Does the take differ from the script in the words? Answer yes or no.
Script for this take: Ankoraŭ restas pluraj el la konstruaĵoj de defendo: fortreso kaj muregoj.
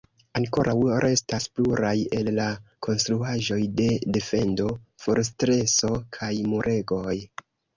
no